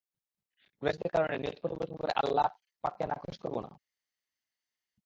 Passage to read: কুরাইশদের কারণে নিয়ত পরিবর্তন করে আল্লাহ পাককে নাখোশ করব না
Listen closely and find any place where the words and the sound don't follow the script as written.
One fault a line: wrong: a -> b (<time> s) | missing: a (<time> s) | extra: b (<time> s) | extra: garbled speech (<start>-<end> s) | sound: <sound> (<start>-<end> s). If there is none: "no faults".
no faults